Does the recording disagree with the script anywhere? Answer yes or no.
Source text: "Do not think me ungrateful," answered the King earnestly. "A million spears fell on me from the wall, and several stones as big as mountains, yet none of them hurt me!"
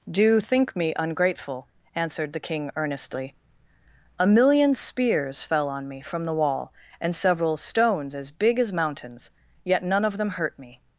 yes